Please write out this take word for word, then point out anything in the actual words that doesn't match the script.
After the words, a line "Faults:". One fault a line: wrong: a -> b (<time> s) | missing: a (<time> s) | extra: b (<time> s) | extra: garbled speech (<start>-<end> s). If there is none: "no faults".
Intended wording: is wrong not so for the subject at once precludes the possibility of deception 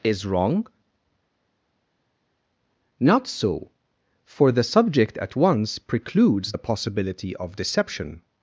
is wrong not so for the subject at once precludes the possibility of deception
Faults:
no faults